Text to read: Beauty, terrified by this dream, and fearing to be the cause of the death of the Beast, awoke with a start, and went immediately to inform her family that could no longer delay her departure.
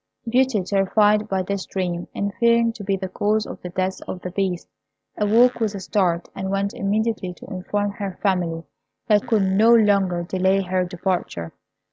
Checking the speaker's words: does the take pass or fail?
pass